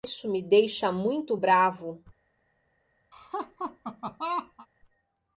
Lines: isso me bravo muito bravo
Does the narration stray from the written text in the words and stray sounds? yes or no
yes